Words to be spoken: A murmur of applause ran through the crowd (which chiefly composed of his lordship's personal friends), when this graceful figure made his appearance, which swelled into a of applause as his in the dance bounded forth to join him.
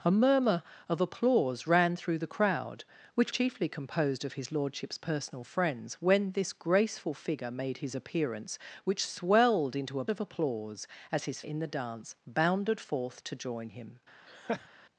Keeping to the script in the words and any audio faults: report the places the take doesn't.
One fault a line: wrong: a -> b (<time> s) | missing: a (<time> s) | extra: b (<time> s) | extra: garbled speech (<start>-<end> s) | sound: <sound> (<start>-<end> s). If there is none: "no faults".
sound: laugh (14.3-14.7 s)